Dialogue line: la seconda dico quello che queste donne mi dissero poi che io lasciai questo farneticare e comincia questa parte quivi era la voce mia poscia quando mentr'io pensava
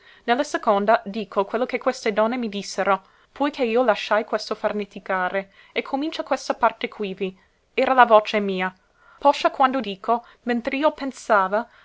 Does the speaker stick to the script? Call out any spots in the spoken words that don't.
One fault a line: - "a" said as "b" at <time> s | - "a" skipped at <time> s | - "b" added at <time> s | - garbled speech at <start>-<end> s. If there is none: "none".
- "dico" added at 9.8 s